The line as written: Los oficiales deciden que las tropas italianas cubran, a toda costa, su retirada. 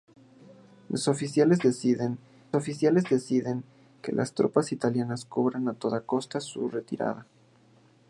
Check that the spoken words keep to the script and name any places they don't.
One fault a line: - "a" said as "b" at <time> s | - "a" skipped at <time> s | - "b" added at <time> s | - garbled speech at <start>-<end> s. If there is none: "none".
- "oficiales deciden" added at 2.5 s